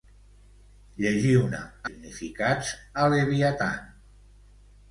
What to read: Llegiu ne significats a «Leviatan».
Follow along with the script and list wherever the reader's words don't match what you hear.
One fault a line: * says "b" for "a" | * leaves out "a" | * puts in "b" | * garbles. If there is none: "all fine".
all fine